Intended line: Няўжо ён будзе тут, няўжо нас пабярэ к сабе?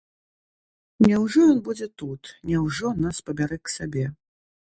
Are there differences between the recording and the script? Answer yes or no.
no